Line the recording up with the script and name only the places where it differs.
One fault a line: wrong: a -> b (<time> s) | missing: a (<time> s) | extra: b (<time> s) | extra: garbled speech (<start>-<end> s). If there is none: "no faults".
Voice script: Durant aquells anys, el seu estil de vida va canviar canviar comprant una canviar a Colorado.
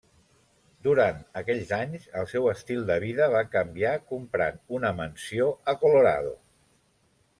missing: canviar (3.9 s)
wrong: canviar -> mansió (5.0 s)